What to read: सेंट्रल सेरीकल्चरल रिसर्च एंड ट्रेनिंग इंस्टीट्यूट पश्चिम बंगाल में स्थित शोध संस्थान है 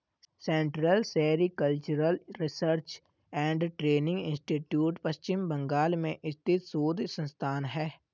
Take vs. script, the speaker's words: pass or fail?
pass